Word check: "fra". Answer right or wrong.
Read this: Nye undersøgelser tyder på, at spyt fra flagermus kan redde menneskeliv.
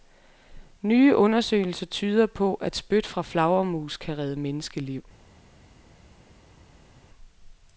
right